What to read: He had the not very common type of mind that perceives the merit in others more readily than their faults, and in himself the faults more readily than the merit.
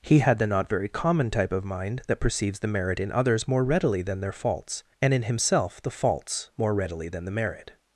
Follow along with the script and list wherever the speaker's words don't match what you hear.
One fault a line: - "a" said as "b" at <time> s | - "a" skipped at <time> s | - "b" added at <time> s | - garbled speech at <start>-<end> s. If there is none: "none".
none